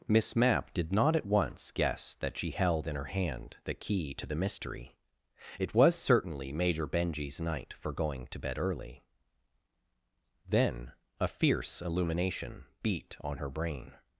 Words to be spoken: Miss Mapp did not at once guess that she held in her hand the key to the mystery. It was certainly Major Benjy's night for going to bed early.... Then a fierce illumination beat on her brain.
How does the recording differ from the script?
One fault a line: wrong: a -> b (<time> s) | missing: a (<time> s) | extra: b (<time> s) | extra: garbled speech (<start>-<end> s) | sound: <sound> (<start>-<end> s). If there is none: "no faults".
no faults